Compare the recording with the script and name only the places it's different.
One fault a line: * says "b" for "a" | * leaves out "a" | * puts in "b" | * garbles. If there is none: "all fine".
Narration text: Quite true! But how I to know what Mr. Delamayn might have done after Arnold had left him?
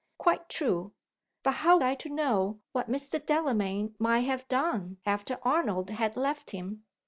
all fine